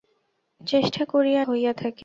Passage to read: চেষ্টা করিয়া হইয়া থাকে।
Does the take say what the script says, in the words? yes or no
yes